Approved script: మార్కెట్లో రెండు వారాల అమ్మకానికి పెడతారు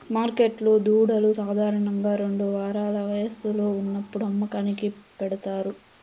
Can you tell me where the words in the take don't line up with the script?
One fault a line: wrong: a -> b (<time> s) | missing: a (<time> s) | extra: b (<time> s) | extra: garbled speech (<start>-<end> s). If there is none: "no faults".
extra: దూడలు సాధారణంగా (0.8 s)
extra: వయస్సులో ఉన్నప్పుడు (3.1 s)